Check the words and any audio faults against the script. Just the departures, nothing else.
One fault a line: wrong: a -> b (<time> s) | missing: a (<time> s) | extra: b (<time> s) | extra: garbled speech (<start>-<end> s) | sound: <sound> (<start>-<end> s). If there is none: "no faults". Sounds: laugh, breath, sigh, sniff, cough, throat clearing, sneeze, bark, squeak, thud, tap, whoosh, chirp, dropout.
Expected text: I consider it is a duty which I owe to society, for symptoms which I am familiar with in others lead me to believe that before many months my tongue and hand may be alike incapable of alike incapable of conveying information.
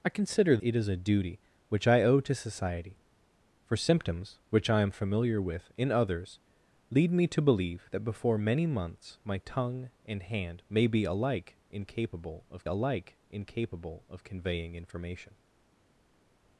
no faults